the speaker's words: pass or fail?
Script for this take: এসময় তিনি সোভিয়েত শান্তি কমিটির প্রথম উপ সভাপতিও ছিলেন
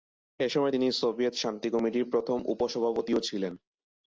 pass